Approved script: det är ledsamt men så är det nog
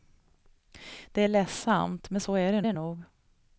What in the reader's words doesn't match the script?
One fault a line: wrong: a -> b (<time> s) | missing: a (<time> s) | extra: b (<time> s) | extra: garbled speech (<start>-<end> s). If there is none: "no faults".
extra: det (2.6 s)